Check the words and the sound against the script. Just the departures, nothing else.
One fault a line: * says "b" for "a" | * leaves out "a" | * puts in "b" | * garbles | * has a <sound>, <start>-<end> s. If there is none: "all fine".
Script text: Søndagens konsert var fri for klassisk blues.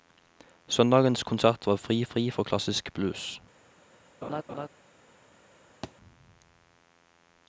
* puts in "fri"
* has a laugh, 4.2-4.7 s
* has a thud, 5.8-5.9 s